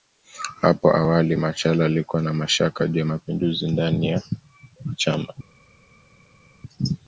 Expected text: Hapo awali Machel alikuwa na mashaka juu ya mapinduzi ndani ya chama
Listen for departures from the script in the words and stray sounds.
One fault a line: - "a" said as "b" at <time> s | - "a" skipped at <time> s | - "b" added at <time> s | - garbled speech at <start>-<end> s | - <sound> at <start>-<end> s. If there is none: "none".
none